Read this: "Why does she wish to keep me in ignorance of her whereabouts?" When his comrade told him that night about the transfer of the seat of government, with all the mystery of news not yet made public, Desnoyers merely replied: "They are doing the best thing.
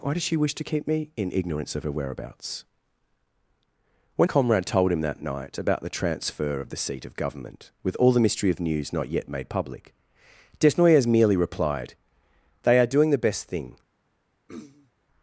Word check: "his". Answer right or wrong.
wrong